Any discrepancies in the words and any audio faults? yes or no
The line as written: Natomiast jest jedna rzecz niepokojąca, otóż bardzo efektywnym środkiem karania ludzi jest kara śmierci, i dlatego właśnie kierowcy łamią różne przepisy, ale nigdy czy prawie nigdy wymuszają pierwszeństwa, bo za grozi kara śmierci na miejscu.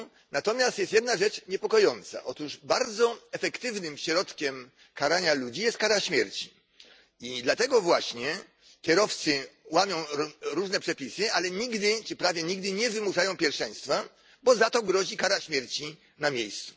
yes